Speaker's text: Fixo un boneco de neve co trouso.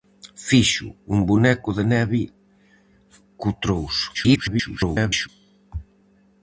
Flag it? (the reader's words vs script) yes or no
yes